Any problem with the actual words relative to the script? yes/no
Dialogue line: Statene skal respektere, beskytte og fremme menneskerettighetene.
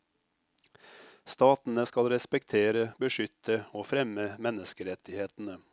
no